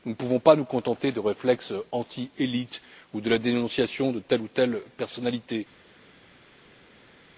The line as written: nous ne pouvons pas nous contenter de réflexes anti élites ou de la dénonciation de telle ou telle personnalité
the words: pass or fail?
pass